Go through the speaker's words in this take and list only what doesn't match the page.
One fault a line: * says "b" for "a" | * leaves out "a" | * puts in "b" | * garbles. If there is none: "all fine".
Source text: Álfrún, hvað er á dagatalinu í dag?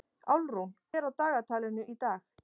* leaves out "hvað"